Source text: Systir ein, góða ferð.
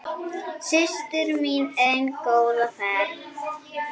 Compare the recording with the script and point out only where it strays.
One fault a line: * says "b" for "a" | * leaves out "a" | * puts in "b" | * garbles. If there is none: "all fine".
* puts in "mín"